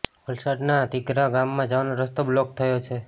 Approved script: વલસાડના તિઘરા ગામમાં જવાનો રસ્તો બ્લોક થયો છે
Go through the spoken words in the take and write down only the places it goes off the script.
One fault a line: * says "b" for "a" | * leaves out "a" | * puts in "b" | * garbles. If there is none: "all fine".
all fine